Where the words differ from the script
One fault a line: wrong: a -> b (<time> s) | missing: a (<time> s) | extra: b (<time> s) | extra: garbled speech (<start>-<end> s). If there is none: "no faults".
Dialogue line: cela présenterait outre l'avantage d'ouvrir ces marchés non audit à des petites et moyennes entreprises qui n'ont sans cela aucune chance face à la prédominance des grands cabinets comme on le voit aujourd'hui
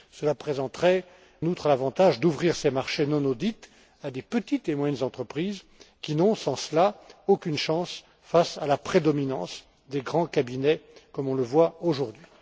no faults